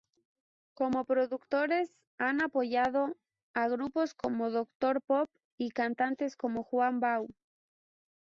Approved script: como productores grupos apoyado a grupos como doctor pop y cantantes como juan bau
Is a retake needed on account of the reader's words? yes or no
yes